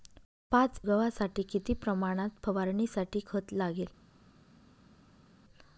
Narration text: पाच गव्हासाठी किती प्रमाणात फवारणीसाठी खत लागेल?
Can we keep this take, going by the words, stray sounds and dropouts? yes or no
yes